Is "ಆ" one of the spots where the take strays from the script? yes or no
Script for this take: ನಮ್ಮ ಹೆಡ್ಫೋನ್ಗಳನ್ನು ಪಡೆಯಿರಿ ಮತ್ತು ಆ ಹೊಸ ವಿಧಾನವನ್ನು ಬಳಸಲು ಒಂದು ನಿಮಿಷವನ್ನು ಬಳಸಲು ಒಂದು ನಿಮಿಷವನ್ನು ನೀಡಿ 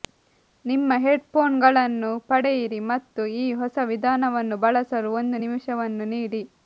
yes